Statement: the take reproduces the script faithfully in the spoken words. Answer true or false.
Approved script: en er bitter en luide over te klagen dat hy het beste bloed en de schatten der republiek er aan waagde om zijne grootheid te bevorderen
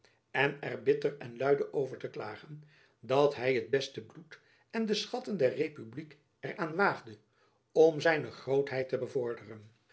true